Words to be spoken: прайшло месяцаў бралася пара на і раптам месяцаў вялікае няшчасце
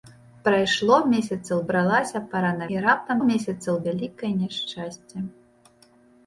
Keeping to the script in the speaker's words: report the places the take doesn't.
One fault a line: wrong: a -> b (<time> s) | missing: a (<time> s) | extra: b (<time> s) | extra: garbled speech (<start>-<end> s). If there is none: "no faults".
no faults